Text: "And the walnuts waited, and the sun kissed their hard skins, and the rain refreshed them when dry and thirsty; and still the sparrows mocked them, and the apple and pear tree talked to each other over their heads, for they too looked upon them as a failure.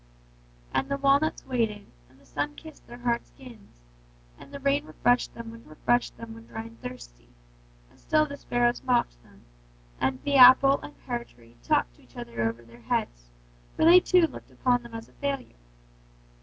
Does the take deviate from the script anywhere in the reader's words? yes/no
yes